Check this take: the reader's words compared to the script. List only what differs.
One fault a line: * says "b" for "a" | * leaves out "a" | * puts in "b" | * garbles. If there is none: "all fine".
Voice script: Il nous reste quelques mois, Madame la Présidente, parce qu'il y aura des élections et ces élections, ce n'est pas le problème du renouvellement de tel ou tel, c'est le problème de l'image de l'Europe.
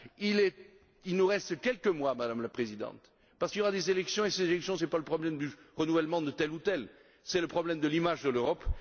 all fine